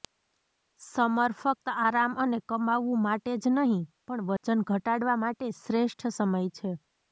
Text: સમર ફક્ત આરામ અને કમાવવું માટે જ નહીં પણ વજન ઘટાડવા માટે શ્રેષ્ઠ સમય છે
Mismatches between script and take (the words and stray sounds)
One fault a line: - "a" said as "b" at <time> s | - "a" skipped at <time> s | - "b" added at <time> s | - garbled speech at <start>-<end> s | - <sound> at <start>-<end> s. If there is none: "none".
- dropout at 4.4-4.4 s